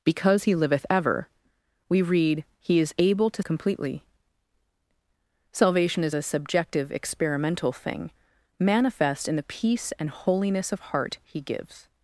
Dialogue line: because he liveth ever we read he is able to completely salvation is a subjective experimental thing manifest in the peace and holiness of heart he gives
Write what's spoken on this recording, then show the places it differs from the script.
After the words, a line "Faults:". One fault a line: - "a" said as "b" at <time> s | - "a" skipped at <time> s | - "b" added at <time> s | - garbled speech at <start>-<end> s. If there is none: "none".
because he liveth ever we read he is able to completely salvation is a subjective experimental thing manifest in the peace and holiness of heart he gives
Faults:
none